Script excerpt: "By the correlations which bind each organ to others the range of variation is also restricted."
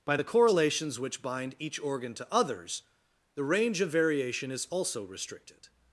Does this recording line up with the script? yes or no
yes